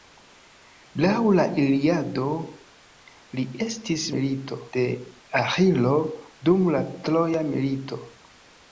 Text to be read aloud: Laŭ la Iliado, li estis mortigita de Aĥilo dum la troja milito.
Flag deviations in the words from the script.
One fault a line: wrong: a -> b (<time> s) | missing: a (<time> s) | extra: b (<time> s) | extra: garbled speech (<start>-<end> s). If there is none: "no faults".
wrong: mortigita -> milito (4.1 s)